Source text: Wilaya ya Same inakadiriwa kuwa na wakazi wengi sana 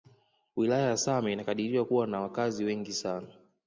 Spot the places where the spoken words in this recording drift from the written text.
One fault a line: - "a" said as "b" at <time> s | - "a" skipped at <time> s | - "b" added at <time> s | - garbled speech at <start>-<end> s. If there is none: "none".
none